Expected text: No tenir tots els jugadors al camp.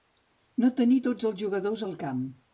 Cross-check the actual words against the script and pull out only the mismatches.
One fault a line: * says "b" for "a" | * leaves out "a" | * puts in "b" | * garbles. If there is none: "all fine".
all fine